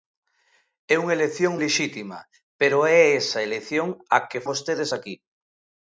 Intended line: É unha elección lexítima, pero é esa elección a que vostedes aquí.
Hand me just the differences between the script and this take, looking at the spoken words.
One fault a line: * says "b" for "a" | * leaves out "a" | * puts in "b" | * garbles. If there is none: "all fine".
all fine